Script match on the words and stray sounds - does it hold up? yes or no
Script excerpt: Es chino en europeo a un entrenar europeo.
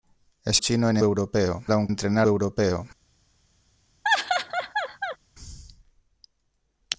no